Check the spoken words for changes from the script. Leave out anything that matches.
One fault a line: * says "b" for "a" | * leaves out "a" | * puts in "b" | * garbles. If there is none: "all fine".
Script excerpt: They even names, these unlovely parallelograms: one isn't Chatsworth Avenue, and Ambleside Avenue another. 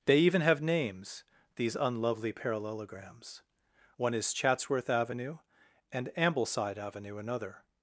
* puts in "have"
* says "is" for "isn't"